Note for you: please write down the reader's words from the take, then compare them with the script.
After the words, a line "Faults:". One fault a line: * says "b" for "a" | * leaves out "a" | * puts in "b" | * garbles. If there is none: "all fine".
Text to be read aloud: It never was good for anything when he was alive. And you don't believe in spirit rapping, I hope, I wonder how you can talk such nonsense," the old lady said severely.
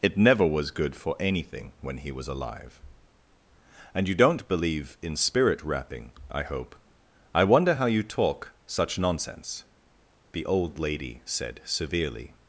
It never was good for anything when he was alive. And you don't believe in spirit rapping, I hope, I wonder how you talk such nonsense," the old lady said severely.
Faults:
* leaves out "can"